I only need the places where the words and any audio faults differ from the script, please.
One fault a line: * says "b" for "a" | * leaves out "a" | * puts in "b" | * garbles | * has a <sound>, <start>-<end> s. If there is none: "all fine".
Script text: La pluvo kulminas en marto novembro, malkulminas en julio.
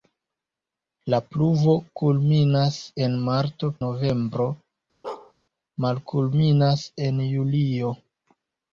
* has a bark, 5.0-5.3 s